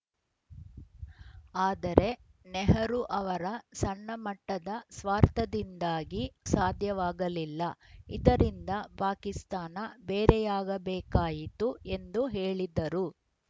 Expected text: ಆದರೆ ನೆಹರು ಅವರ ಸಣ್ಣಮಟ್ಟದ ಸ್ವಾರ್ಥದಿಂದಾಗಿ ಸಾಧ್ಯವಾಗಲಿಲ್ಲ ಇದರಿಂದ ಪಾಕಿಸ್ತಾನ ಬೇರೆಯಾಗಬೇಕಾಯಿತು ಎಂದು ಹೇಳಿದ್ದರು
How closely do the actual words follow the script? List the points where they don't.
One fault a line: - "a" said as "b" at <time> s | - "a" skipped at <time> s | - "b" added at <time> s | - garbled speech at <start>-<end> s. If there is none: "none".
none